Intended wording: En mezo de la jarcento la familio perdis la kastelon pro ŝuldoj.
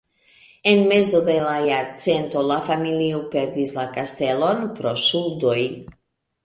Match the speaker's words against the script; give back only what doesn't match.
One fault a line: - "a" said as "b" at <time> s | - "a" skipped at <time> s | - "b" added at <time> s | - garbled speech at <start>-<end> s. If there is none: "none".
none